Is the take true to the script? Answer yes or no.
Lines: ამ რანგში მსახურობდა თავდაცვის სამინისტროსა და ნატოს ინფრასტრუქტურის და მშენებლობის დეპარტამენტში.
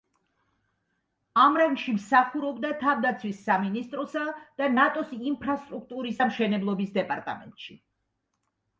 yes